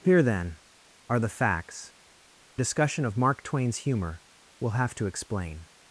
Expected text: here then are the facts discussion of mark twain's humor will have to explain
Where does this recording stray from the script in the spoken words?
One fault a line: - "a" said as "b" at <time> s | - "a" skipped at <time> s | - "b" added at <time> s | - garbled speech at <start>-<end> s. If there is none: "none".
none